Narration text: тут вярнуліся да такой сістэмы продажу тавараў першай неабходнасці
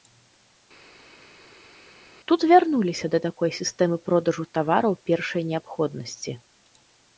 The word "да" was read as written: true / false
true